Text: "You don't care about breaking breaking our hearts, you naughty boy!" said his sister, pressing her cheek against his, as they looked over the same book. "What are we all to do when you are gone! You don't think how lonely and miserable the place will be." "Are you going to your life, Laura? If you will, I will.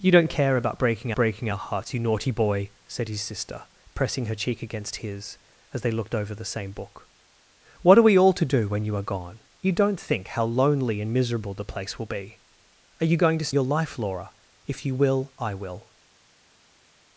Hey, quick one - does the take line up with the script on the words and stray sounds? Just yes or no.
yes